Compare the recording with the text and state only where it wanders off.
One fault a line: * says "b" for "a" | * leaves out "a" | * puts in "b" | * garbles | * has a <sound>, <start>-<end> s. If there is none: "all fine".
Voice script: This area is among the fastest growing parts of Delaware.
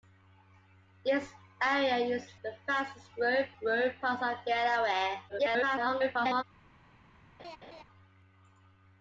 * leaves out "among"
* puts in "growing"
* garbles
* has a laugh, 7.4-7.8 s